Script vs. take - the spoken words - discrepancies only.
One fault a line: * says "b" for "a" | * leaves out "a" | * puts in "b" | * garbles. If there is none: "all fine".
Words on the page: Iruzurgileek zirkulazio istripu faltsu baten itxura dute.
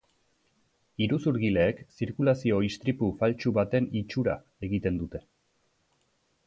* puts in "egiten"